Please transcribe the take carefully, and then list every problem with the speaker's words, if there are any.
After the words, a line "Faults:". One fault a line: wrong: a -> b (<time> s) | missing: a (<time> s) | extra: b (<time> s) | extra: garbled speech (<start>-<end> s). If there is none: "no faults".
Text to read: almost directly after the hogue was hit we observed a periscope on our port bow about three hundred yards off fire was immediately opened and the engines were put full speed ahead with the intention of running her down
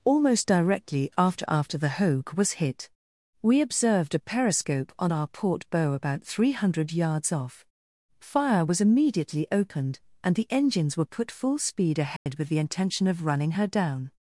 almost directly after after the hogue was hit we observed a periscope on our port bow about three hundred yards off fire was immediately opened and the engines were put full speed ahead with the intention of running her down
Faults:
extra: after (1.5 s)